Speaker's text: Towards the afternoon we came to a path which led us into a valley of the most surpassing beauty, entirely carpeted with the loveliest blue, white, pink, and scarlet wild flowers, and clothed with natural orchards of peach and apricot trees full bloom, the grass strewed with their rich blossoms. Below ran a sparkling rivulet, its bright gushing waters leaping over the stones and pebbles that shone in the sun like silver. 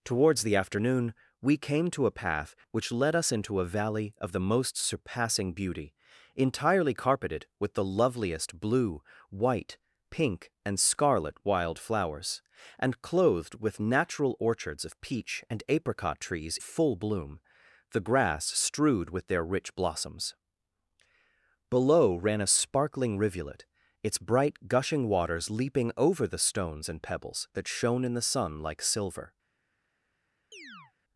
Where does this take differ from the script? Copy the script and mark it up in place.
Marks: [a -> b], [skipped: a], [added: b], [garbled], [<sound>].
Towards the afternoon we came to a path which led us into a valley of the most surpassing beauty, entirely carpeted with the loveliest blue, white, pink, and scarlet wild flowers, and clothed with natural orchards of peach and apricot trees full bloom, the grass strewed with their rich blossoms. Below ran a sparkling rivulet, its bright gushing waters leaping over the stones and pebbles that shone in the sun like silver. [chirp]